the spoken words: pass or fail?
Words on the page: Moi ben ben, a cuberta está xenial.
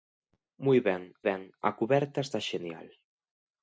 pass